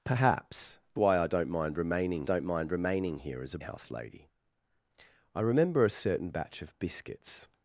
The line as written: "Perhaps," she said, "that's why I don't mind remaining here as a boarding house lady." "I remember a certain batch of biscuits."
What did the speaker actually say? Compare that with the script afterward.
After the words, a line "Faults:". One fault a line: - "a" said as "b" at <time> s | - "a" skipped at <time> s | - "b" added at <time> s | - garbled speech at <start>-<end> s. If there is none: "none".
"Perhaps," why I don't mind remaining don't mind remaining here as a house lady." "I remember a certain batch of biscuits."
Faults:
- "she said that's why I" said as "why I don't mind remaining" at 1.0 s
- "boarding" skipped at 3.6 s